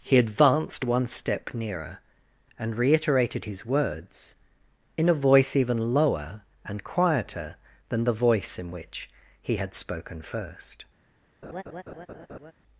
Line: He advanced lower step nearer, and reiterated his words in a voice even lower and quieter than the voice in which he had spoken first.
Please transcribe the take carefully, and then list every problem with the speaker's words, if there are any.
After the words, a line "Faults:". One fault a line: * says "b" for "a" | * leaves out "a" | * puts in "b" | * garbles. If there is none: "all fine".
He advanced one step nearer, and reiterated his words in a voice even lower and quieter than the voice in which he had spoken first.
Faults:
* says "one" for "lower"